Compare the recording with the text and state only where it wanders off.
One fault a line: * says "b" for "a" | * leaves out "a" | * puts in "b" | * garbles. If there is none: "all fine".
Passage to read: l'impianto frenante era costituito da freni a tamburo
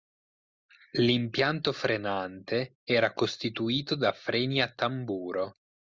all fine